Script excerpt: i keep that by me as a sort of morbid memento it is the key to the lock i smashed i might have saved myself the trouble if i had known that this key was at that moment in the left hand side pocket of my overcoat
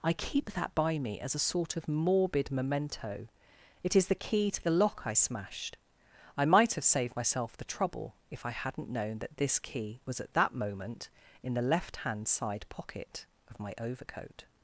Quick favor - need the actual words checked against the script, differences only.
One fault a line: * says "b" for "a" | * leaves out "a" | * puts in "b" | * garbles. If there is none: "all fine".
* says "hadn't" for "had"